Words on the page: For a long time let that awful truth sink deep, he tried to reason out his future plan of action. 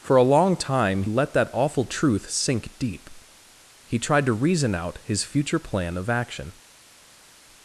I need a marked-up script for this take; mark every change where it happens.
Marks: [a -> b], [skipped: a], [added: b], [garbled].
For a long time let that awful truth sink deep, he tried to reason out his future plan of action.